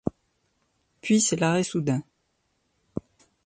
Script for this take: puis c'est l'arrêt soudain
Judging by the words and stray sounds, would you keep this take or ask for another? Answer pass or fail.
pass